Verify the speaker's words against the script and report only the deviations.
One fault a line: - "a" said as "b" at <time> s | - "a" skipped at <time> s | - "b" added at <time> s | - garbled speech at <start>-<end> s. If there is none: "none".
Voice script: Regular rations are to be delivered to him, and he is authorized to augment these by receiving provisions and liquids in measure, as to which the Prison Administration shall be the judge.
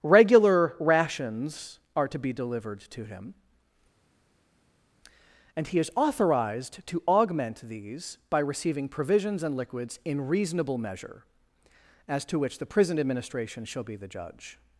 - "reasonable" added at 10.3 s